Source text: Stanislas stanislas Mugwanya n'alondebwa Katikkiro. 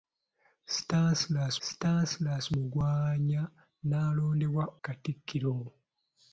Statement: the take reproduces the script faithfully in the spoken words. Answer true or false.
true